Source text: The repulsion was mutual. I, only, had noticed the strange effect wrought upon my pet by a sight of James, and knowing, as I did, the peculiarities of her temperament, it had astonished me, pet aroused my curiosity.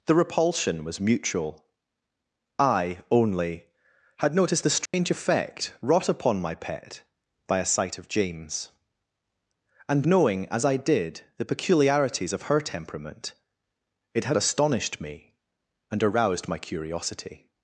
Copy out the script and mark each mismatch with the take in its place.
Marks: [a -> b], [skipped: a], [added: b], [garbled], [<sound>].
The repulsion was mutual. I, only, had noticed the strange [dropout] effect wrought upon my pet by a sight of James, and knowing, as I did, the peculiarities of her temperament, it had astonished me, [pet -> and] aroused my curiosity.